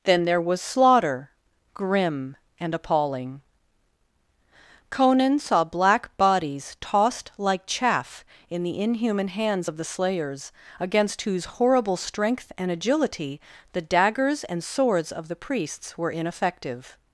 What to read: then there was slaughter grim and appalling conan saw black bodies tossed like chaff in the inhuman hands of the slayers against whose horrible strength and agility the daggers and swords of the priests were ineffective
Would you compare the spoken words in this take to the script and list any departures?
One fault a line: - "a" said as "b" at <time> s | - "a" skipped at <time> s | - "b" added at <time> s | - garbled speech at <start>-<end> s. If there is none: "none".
none